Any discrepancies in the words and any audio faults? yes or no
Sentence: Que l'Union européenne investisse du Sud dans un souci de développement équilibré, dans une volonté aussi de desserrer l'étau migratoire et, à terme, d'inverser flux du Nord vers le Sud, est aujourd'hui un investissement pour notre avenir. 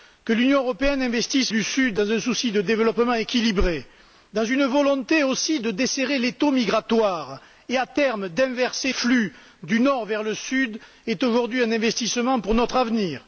no